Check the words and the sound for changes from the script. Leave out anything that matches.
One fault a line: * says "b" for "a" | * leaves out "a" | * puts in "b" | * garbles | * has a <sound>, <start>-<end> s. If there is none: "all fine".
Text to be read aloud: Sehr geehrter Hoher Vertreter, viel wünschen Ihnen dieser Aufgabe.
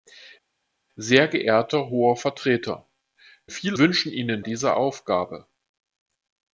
all fine